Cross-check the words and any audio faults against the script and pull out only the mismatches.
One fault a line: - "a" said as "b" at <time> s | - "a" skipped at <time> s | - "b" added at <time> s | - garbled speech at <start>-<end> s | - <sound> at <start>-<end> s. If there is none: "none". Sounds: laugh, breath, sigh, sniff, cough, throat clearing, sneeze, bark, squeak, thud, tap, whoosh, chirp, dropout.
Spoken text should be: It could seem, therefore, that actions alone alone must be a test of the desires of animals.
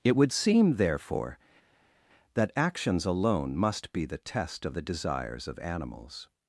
- "could" said as "would" at 0.1 s
- "alone" skipped at 3.6 s
- "a" said as "the" at 4.0 s